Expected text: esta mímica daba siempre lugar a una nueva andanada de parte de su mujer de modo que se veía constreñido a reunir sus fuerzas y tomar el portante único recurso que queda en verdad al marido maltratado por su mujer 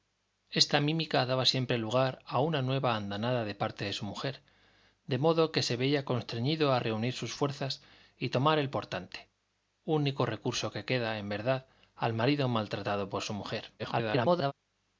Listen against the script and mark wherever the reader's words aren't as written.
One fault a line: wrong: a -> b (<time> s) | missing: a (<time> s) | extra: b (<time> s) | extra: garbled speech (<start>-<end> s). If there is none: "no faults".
extra: garbled speech (13.8-14.5 s)